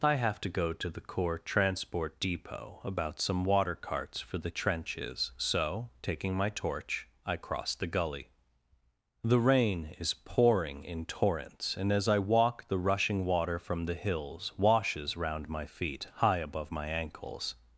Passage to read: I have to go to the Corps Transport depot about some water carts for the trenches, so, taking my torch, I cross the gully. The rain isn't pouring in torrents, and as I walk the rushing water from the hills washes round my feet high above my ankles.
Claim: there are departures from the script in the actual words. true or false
true